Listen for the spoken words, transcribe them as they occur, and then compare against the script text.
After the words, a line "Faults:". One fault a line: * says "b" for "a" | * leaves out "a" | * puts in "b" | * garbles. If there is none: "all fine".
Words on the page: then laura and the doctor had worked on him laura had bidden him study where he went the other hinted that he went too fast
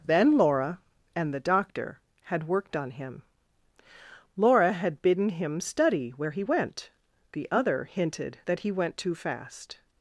then laura and the doctor had worked on him laura had bidden him study where he went the other hinted that he went too fast
Faults:
all fine